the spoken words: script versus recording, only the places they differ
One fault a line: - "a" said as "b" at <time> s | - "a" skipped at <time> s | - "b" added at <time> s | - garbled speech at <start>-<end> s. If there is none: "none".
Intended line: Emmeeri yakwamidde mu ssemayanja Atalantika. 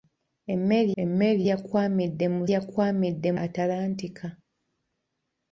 - "emmeeri" added at 1.0 s
- "ssemayanja" said as "yakwamidde" at 2.5 s